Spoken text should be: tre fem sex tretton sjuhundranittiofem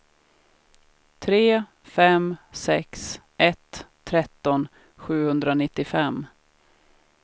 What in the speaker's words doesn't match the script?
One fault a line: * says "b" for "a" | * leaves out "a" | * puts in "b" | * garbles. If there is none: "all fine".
* puts in "ett"